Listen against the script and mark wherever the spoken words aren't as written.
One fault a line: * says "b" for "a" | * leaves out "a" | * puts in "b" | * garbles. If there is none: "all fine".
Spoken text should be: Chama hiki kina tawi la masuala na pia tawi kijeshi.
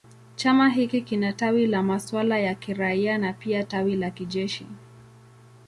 * puts in "ya kiraia"
* puts in "la"